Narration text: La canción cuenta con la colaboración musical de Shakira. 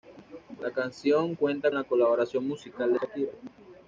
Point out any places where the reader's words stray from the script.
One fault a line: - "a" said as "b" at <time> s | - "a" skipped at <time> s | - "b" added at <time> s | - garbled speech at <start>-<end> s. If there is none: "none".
- "con" skipped at 1.7 s